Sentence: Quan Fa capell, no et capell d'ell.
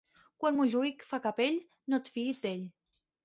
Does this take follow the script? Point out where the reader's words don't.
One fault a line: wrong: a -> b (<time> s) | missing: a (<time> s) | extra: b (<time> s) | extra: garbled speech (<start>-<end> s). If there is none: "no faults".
extra: Montjuïc (0.6 s)
wrong: capell -> fiïs (2.2 s)